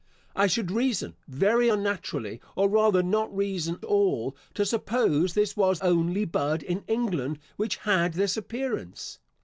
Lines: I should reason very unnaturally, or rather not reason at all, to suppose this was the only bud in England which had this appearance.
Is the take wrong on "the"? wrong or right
wrong